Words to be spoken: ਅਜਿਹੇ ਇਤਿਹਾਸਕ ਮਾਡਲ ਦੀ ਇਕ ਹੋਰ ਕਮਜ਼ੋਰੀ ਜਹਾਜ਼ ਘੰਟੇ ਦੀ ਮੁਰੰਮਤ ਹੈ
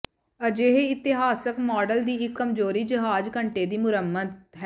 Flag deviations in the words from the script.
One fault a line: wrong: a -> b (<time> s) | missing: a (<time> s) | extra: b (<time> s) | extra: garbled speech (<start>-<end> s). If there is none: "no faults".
missing: ਹੋਰ (2.4 s)